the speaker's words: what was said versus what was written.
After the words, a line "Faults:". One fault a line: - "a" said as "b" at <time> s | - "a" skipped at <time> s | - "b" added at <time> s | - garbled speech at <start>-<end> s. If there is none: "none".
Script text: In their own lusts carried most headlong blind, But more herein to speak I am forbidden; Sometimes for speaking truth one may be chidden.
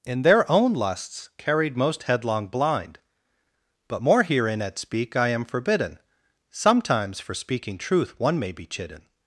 In their own lusts carried most headlong blind, But more herein at speak I am forbidden; Sometimes for speaking truth one may be chidden.
Faults:
- "to" said as "at" at 4.6 s